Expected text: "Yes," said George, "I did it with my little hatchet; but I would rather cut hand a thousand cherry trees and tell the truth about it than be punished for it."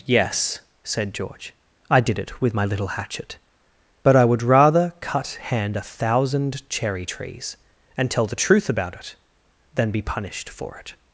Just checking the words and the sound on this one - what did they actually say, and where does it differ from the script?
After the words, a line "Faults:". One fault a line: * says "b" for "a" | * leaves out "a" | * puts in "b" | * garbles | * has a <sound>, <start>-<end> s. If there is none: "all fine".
"Yes," said George, "I did it with my little hatchet; but I would rather cut hand a thousand cherry trees and tell the truth about it than be punished for it."
Faults:
all fine